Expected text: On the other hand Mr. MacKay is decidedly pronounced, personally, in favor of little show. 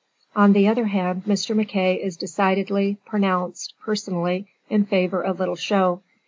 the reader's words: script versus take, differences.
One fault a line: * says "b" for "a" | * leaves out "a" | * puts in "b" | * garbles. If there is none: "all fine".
all fine